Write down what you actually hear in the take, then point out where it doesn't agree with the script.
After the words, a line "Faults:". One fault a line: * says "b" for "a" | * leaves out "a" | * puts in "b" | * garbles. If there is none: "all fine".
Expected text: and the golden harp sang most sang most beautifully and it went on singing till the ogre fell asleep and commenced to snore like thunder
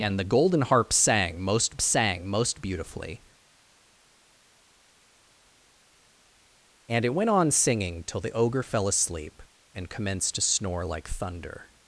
and the golden harp sang most sang most beautifully and it went on singing till the ogre fell asleep and commenced to snore like thunder
Faults:
all fine